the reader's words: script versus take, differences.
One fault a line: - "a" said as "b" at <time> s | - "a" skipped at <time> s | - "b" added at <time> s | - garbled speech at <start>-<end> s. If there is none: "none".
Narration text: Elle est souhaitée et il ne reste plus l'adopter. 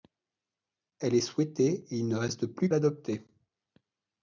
none